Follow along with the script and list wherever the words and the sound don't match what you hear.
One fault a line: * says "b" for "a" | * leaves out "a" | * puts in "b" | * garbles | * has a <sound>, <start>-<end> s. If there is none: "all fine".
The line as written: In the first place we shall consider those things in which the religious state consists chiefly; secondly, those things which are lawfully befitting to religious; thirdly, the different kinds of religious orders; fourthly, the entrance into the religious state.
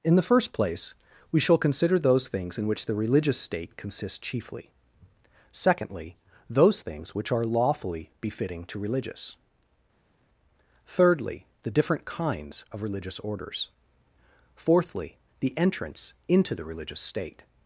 all fine